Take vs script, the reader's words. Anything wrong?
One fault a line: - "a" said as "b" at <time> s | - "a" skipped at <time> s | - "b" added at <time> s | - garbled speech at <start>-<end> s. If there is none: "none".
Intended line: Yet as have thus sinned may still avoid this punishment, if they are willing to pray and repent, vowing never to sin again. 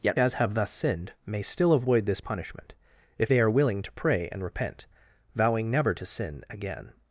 none